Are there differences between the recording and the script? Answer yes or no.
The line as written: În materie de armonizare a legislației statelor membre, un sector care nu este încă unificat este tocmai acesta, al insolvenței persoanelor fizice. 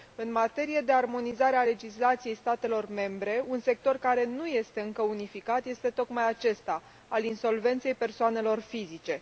no